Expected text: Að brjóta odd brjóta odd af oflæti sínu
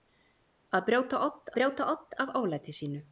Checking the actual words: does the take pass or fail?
pass